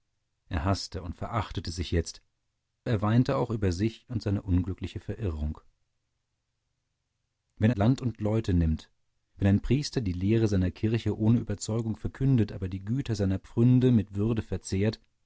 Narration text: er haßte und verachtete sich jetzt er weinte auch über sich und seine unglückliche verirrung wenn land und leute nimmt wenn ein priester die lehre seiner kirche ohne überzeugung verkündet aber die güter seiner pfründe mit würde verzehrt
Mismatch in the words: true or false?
false